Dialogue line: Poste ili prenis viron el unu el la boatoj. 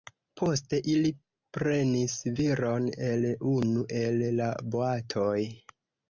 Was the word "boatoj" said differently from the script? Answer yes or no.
no